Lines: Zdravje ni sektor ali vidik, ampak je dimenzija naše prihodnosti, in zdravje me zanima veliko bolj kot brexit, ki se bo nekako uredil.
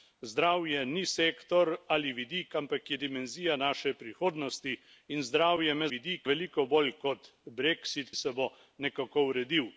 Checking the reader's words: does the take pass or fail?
fail